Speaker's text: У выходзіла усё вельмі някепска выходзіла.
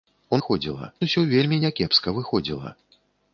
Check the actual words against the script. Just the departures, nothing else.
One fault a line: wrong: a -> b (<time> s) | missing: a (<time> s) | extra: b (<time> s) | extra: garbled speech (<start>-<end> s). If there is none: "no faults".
no faults